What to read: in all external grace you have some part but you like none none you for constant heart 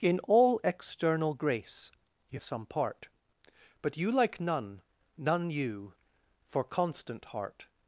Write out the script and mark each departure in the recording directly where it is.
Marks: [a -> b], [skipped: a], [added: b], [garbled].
in all external grace you [skipped: have] some part but you like none none you for constant heart